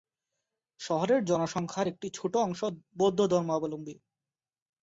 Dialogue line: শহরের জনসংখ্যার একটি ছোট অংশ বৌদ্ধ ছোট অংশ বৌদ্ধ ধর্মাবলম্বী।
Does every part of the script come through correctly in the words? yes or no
no